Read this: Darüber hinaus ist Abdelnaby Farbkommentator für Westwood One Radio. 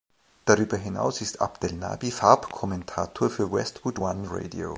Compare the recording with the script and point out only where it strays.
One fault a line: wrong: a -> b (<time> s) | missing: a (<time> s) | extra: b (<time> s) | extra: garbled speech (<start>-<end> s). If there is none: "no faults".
no faults